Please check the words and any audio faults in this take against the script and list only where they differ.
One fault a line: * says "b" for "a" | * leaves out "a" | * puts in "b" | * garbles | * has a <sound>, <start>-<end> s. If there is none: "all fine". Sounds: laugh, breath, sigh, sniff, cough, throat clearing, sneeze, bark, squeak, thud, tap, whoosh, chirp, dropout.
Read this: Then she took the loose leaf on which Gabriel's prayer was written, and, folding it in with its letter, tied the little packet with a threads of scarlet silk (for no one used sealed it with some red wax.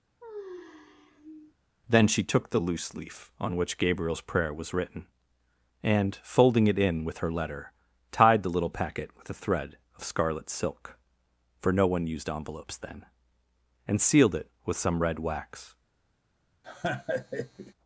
* has a sigh, 0.2-1.5 s
* says "her" for "its"
* says "thread" for "threads"
* puts in "envelopes then and"
* has a laugh, 16.6-17.7 s